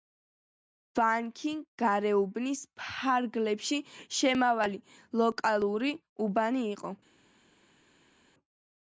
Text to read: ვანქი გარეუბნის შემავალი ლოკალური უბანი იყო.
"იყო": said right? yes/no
yes